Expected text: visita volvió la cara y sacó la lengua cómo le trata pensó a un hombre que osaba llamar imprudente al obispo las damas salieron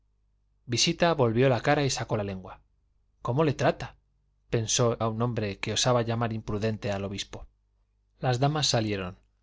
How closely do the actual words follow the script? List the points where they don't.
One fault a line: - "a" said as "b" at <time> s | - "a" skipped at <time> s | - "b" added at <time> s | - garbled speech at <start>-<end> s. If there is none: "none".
none